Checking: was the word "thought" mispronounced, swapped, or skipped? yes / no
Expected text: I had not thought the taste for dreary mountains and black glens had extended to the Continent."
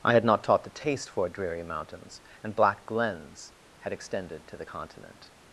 yes